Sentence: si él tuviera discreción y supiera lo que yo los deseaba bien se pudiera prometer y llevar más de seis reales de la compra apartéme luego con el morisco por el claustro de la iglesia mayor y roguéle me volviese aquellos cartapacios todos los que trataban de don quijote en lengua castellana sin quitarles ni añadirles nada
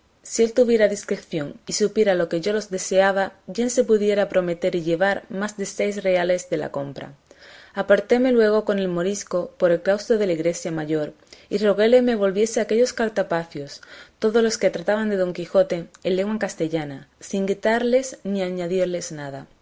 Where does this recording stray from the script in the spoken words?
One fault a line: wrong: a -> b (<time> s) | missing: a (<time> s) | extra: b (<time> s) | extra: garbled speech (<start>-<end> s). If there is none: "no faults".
no faults